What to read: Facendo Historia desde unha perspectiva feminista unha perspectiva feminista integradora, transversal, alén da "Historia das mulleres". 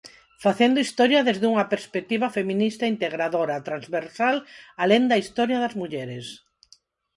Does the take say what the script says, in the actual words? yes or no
no